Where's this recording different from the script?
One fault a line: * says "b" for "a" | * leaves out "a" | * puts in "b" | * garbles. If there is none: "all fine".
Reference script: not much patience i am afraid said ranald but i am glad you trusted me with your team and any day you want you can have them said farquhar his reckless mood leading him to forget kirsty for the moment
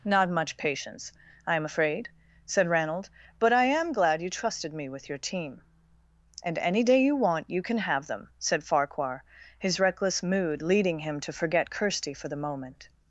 all fine